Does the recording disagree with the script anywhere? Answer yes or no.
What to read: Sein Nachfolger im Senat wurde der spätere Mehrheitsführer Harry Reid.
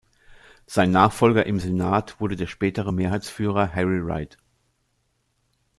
no